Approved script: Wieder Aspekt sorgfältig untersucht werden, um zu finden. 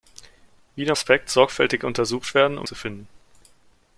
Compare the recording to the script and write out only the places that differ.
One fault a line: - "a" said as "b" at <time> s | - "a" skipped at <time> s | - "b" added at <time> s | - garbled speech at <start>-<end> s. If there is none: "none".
none